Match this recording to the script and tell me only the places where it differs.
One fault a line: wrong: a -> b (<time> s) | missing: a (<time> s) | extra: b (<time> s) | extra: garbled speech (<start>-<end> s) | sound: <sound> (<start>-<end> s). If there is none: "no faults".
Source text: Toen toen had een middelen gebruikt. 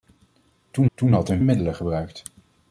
no faults